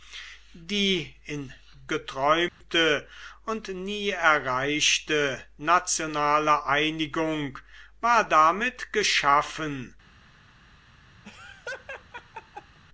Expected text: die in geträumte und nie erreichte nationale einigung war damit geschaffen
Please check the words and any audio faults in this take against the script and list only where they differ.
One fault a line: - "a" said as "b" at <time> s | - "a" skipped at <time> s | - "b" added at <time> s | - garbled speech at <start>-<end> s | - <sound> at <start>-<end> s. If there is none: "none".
- dropout at 2.5-2.6 s
- laugh at 11.2-12.8 s